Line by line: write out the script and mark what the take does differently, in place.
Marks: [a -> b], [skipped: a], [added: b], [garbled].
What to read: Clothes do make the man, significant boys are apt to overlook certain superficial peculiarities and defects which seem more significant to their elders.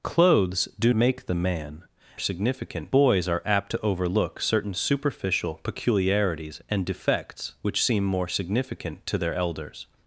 Clothes do make the man, significant boys are apt to overlook certain superficial peculiarities and defects which seem more significant to their elders.